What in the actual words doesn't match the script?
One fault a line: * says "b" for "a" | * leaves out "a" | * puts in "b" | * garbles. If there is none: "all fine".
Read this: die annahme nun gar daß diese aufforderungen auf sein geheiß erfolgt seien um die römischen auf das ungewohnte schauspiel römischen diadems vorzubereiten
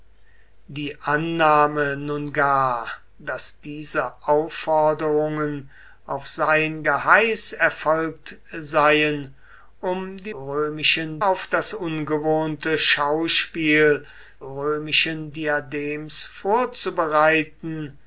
all fine